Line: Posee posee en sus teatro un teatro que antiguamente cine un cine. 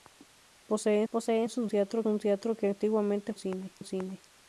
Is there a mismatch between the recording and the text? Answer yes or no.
no